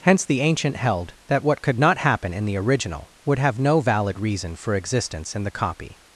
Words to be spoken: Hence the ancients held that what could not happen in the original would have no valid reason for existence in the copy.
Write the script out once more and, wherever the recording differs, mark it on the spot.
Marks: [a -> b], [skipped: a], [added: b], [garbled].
Hence the [ancients -> ancient] held that what could not happen in the original would have no valid reason for existence in the copy.